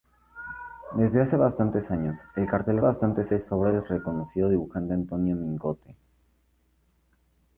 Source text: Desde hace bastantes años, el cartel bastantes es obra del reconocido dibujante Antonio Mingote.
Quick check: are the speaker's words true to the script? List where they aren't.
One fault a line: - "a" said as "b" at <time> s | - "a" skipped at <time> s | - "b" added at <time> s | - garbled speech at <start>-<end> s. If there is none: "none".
none